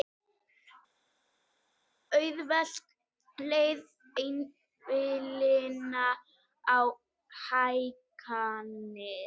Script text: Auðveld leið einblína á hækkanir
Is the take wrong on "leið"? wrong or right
right